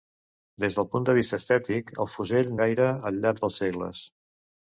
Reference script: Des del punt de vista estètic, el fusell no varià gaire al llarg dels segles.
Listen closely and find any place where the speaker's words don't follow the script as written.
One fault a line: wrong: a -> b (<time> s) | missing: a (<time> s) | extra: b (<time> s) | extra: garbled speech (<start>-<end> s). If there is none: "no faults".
missing: no varià (2.6 s)